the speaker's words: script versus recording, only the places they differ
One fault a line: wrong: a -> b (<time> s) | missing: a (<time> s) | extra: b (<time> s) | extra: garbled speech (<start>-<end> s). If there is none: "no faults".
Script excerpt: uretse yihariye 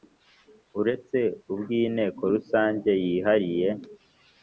extra: ubw inteko rusange (1.5 s)